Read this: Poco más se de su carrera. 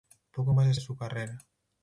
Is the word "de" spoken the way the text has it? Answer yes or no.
yes